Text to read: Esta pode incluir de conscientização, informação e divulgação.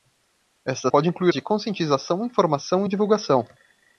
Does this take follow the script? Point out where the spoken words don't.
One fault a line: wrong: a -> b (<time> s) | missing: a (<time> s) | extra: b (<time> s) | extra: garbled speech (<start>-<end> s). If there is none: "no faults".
no faults